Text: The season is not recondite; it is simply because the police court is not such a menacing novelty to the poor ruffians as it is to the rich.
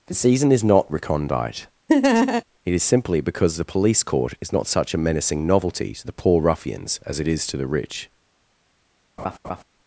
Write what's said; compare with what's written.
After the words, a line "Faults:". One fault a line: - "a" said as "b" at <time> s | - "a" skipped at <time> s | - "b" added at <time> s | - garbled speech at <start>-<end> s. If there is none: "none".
The season is not recondite; it is simply because the police court is not such a menacing novelty to the poor ruffians as it is to the rich.
Faults:
none